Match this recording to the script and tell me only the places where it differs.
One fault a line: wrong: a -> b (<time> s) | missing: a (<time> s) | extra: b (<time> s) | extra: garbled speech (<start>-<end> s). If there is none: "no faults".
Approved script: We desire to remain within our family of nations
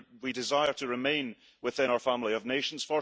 no faults